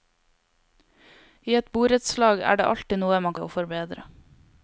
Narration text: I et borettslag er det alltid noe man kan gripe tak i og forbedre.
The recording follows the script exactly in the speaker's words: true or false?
false